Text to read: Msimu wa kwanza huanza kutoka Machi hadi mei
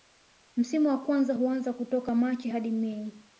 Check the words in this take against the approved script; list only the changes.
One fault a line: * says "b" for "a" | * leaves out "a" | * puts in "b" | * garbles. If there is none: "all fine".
all fine